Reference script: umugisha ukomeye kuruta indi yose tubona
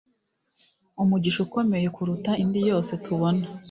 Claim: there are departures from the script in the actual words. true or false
false